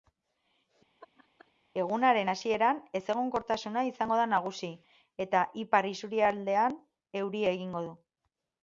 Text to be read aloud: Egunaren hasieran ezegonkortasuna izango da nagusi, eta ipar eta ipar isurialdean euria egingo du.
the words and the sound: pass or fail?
fail